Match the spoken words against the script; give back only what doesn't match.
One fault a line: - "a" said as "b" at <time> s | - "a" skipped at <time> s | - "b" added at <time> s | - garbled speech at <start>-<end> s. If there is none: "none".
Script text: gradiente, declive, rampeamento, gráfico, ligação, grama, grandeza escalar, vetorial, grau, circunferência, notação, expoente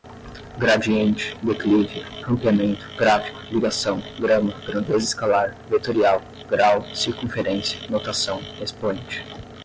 none